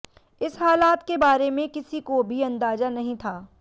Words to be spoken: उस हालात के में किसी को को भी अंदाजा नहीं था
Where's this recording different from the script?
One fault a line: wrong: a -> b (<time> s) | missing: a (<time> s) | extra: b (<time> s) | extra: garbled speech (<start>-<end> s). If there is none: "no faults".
wrong: उस -> इस (0.4 s)
extra: बारे (1.2 s)
missing: को (2.2 s)